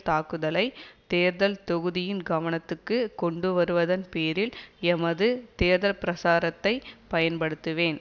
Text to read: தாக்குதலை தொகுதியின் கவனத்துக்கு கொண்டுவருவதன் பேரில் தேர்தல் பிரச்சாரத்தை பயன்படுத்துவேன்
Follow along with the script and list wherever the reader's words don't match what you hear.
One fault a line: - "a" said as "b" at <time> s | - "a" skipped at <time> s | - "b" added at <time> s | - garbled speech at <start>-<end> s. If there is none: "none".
- "தேர்தல்" added at 1.1 s
- "எமது" added at 4.9 s